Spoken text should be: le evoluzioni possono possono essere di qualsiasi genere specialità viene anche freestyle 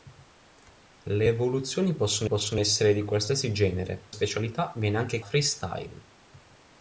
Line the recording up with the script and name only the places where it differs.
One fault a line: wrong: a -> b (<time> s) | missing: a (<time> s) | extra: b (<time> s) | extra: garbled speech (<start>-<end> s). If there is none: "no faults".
no faults